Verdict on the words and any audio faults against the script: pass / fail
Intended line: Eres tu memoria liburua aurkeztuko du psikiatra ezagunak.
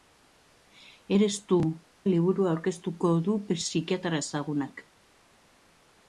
fail